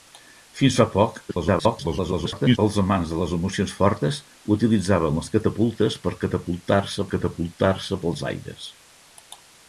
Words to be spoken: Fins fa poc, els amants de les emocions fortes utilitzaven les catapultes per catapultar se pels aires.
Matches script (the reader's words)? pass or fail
fail